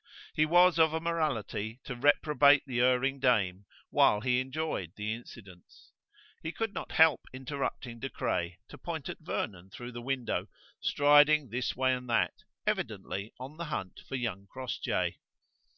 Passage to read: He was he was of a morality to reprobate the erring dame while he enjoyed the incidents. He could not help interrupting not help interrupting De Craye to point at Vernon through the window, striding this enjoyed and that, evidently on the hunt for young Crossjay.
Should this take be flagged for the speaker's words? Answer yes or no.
yes